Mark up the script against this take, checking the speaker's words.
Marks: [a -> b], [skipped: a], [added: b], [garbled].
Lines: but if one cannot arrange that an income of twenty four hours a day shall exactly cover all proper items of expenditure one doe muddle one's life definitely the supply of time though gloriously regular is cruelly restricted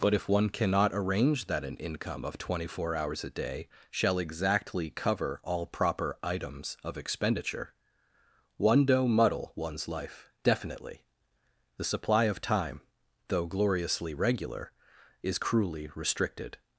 but if one cannot arrange that an income of twenty four hours a day shall exactly cover all proper items of expenditure one doe muddle one's life definitely the supply of time though gloriously regular is cruelly restricted